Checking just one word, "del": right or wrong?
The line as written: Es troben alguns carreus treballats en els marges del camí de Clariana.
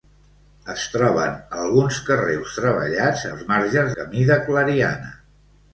wrong